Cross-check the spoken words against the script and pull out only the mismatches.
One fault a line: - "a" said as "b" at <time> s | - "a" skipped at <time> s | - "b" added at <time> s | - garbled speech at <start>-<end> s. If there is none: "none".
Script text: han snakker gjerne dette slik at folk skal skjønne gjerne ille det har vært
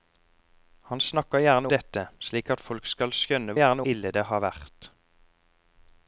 none